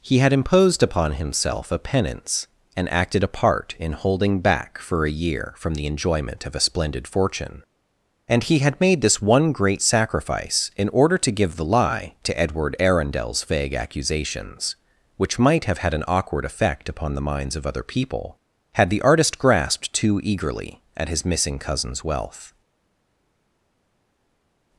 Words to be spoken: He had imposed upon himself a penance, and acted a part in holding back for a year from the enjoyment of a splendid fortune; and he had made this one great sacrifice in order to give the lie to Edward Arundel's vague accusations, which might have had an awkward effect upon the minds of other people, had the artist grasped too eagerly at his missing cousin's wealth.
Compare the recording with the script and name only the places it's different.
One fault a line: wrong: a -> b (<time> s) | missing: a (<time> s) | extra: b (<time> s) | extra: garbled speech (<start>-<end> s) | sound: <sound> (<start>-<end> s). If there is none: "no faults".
no faults